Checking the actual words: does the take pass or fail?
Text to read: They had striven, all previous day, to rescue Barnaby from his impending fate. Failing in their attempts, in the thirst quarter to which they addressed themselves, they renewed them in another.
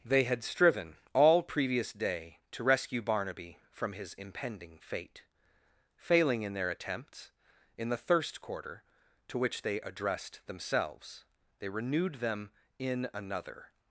pass